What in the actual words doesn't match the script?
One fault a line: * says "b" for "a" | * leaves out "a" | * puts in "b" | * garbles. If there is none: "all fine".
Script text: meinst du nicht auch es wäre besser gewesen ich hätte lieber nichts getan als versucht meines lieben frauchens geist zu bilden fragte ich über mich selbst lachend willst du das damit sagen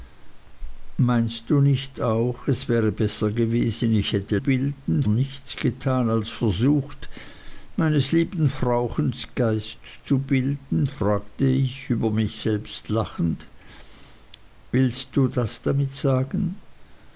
* says "bilden" for "lieber"